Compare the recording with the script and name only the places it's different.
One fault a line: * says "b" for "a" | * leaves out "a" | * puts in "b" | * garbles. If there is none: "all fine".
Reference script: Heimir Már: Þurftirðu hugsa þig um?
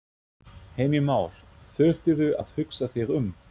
* puts in "að"